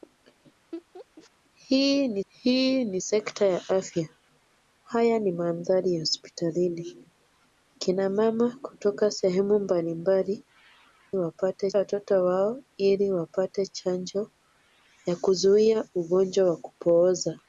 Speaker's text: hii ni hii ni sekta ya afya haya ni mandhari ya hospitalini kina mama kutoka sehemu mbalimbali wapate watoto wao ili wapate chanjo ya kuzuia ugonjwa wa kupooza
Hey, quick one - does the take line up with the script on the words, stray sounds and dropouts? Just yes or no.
no